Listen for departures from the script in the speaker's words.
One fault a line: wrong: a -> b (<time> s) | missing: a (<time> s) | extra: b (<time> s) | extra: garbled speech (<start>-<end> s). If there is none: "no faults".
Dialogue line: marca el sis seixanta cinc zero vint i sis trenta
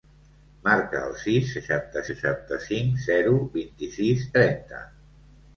extra: seixanta (2.1 s)